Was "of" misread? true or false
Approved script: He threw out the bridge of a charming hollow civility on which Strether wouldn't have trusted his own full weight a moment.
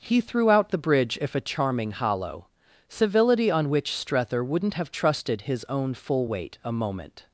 true